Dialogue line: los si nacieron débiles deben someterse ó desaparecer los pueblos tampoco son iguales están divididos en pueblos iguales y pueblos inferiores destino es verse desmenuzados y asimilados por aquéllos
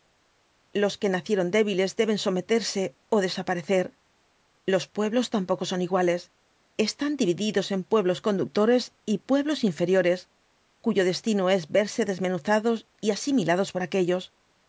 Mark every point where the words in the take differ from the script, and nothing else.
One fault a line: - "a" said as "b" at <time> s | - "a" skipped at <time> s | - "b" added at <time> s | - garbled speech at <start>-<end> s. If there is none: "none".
- "si" said as "que" at 1.0 s
- "iguales" said as "conductores" at 8.3 s
- "cuyo" added at 10.8 s